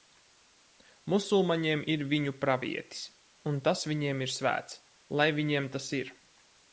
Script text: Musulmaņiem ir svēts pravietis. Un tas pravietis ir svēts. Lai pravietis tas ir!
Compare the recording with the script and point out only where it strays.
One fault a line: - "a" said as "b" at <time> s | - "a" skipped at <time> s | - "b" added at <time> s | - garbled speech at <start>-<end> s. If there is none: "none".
- "svēts" said as "viņu" at 2.1 s
- "pravietis" said as "viņiem" at 3.9 s
- "pravietis" said as "viņiem" at 5.4 s